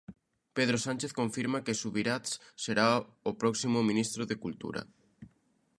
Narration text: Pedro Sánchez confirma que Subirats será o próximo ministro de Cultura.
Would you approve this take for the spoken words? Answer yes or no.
yes